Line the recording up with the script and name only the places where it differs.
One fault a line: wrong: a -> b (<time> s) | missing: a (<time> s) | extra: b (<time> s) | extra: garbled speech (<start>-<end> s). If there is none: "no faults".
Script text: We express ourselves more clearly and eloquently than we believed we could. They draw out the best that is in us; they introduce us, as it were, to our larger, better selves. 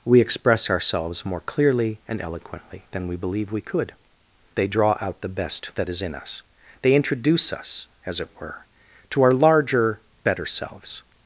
wrong: believed -> believe (3.1 s)